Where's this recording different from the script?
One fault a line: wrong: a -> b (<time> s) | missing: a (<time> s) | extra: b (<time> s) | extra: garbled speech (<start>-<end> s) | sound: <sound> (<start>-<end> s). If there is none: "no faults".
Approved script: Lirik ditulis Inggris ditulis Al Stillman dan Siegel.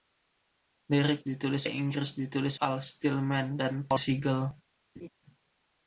sound: laugh (5.0-5.1 s)